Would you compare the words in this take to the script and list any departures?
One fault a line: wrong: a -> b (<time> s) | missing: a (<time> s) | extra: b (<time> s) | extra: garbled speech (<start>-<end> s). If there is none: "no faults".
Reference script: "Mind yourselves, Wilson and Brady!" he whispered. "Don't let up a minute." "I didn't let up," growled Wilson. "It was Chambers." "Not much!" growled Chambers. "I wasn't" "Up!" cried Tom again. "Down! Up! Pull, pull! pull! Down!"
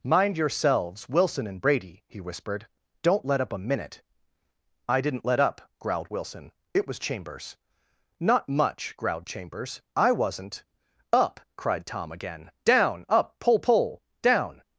missing: pull (14.0 s)